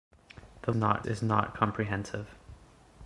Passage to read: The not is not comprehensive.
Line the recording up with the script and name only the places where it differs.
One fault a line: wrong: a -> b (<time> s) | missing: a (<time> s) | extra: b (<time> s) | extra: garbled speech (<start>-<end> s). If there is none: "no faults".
no faults